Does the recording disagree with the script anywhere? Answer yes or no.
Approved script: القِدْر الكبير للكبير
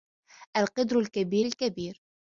no